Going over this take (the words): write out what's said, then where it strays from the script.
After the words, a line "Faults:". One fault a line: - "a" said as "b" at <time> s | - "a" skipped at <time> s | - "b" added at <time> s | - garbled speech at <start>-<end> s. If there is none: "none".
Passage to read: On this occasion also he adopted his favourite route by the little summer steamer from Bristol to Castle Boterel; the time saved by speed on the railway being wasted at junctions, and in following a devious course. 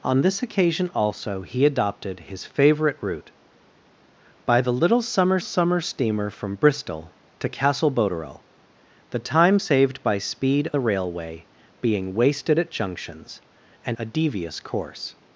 On this occasion also he adopted his favourite route by the little summer summer steamer from Bristol to Castle Boterel; the time saved by speed the railway being wasted at junctions, and a devious course.
Faults:
- "summer" added at 5.4 s
- "on" skipped at 10.7 s
- "in following" skipped at 14.0 s